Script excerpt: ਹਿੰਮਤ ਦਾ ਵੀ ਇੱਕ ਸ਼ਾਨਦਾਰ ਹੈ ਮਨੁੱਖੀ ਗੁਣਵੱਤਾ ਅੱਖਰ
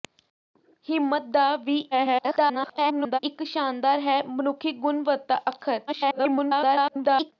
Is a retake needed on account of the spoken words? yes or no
yes